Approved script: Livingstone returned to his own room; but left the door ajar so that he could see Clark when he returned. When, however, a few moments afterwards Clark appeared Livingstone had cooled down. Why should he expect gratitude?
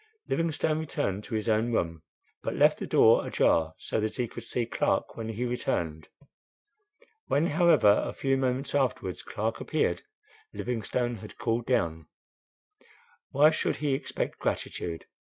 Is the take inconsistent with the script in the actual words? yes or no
no